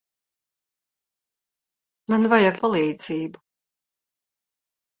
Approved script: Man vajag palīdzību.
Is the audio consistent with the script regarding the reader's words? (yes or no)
yes